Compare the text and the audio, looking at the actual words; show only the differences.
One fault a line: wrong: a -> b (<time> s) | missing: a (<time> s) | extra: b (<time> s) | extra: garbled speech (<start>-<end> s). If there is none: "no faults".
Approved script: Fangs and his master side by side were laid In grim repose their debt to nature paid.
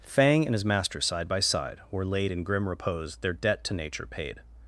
wrong: Fangs -> Fang (0.0 s)